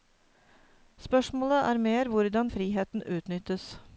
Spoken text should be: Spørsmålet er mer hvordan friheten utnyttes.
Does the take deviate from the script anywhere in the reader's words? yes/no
no